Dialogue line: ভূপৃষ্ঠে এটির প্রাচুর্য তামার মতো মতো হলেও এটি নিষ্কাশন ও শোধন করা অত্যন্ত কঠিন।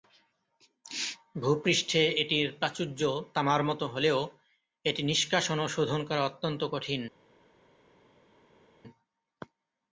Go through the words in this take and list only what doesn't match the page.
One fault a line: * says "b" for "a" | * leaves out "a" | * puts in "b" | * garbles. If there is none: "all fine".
* leaves out "মতো"